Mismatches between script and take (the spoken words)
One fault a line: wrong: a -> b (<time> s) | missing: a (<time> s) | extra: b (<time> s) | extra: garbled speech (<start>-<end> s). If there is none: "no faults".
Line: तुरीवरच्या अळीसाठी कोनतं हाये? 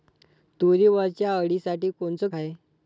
no faults